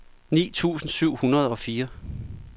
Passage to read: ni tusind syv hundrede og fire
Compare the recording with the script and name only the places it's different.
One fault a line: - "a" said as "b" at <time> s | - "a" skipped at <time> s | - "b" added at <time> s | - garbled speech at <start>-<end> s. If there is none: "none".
none